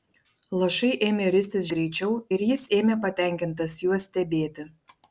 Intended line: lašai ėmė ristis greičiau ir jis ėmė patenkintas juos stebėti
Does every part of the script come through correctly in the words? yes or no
yes